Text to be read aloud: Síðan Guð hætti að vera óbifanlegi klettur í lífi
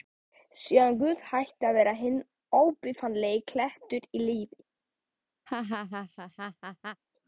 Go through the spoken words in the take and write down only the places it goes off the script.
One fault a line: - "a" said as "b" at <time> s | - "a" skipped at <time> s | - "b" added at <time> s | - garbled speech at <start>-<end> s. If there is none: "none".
- "hinn" added at 2.0 s